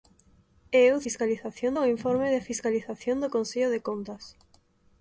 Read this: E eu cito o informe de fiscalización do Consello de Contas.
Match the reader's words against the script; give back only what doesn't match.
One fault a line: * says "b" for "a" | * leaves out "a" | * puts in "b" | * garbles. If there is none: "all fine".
* says "fiscalización" for "cito"